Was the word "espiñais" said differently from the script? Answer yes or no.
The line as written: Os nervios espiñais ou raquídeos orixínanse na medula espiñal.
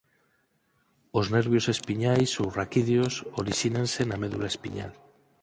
no